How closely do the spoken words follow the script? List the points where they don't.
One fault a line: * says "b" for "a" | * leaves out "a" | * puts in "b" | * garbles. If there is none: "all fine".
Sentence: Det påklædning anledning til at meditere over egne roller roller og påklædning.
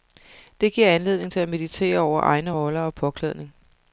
* says "giver" for "påklædning"
* leaves out "roller"